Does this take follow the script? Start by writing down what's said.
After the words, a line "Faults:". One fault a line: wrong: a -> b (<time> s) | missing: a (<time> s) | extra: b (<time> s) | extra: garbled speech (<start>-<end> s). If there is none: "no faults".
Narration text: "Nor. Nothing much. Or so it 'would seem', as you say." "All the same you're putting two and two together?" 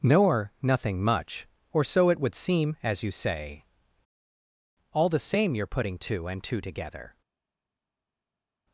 "Nor. Nothing much. Or so it 'would seem', as you say." "All the same you're putting two and two together?"
Faults:
no faults